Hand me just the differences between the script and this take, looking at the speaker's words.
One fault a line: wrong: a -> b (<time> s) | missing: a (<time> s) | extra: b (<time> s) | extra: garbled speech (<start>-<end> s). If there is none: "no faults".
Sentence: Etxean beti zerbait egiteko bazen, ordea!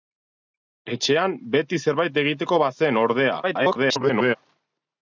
extra: garbled speech (3.4-4.4 s)